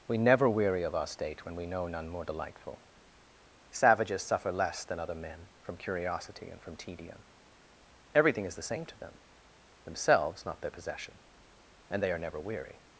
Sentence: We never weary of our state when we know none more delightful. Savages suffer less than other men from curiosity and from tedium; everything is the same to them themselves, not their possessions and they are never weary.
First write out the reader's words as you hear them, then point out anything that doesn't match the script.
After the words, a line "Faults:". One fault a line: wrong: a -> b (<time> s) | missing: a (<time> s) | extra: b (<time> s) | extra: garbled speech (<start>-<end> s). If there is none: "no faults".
We never weary of our state when we know none more delightful. Savages suffer less than other men from curiosity and from tedium; everything is the same to them themselves, not their possession and they are never weary.
Faults:
wrong: possessions -> possession (10.7 s)